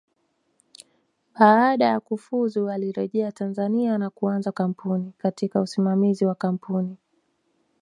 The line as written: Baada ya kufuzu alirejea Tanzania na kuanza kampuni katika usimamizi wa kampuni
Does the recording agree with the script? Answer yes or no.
yes